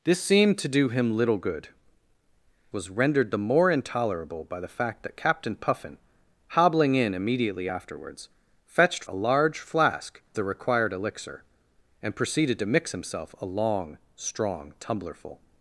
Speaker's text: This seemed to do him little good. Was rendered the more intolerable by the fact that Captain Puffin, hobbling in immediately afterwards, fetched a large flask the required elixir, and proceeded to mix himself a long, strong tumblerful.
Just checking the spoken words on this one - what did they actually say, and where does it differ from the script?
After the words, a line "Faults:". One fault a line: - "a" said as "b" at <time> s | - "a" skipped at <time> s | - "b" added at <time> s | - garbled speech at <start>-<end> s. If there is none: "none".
This seemed to do him little good. Was rendered the more intolerable by the fact that Captain Puffin, hobbling in immediately afterwards, fetched a large flask the required elixir, and proceeded to mix himself a long, strong tumblerful.
Faults:
none